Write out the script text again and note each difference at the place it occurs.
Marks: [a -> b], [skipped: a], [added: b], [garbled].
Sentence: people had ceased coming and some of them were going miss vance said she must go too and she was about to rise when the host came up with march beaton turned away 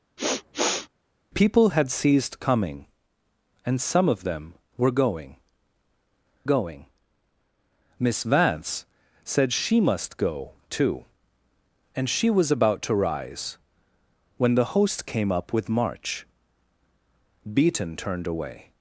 people had ceased coming and some of them were going [added: going] miss vance said she must go too and she was about to rise when the host came up with march beaton turned away